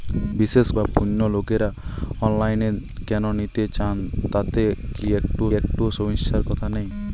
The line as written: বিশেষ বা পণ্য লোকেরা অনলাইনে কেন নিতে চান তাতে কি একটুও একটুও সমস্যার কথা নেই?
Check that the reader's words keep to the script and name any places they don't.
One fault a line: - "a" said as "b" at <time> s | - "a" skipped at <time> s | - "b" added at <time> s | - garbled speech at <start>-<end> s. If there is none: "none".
none